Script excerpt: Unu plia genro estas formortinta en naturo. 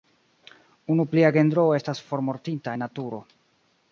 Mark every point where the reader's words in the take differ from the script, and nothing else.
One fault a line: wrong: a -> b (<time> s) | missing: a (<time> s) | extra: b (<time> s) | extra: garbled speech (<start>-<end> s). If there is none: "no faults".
no faults